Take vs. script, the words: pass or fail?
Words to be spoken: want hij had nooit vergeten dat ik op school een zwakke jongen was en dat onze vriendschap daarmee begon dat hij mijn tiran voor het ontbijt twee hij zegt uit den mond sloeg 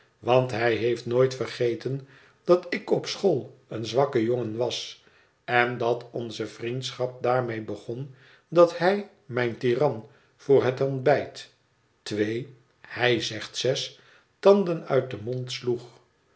fail